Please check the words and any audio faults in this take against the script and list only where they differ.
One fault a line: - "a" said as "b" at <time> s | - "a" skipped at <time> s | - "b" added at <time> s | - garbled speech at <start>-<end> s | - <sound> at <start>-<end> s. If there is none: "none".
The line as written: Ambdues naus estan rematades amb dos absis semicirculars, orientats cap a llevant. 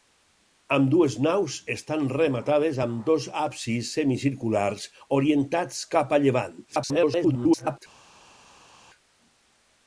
- garbled speech at 6.7-7.8 s